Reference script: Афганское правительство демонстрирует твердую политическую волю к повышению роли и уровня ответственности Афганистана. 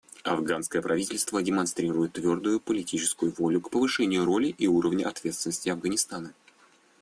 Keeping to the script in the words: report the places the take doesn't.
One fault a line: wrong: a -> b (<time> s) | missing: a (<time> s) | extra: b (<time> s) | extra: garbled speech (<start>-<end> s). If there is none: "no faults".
no faults